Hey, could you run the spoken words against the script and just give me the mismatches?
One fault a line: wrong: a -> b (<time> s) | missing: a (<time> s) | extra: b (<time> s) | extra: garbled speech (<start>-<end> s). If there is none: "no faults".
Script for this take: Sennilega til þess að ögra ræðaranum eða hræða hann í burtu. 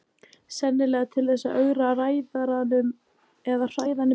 no faults